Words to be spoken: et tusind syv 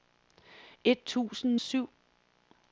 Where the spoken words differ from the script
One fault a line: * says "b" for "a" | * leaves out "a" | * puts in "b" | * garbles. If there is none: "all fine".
all fine